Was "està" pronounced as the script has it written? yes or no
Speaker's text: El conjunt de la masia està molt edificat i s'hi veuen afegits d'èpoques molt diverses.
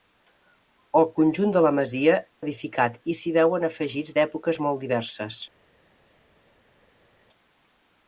no